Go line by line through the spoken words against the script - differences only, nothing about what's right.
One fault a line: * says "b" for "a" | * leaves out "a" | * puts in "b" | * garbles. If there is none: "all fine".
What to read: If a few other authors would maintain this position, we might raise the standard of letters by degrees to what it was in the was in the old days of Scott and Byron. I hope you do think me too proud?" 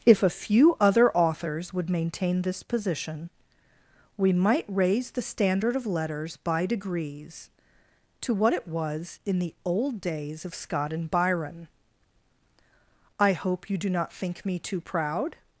* leaves out "was in the"
* puts in "not"